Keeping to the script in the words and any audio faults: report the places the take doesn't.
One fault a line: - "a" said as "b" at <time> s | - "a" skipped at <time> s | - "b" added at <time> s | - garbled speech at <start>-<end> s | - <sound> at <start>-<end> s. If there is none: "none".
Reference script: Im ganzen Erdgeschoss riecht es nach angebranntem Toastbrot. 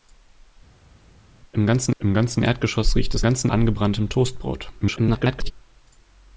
- "im ganzen" added at 2.0 s
- "nach" said as "ganzen" at 3.2 s
- garbled speech at 4.8-5.5 s